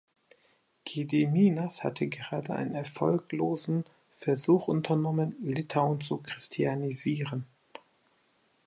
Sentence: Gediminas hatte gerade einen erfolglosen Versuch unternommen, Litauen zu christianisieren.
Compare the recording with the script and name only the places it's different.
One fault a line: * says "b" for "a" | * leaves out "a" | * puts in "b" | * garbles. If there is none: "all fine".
all fine